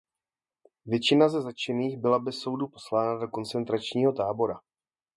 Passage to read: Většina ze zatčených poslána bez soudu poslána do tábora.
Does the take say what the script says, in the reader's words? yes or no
no